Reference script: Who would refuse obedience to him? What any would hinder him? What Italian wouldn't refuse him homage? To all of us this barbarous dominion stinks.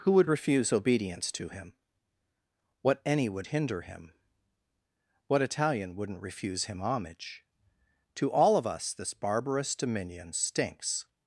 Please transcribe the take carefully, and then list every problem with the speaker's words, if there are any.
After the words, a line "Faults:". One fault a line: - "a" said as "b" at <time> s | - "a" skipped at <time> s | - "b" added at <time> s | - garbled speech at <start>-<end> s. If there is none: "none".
Who would refuse obedience to him? What any would hinder him? What Italian wouldn't refuse him homage? To all of us this barbarous dominion stinks.
Faults:
none